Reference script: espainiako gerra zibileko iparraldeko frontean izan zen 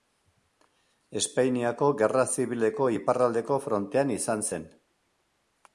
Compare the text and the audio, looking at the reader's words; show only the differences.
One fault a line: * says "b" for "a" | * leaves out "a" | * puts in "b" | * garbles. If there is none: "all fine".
all fine